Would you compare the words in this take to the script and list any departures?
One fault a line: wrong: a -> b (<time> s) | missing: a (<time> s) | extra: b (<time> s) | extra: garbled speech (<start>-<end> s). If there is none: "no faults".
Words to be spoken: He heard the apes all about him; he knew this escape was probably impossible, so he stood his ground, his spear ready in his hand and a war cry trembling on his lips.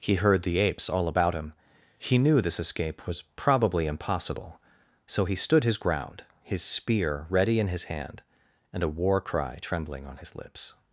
no faults